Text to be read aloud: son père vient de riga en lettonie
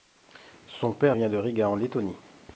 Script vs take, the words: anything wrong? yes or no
no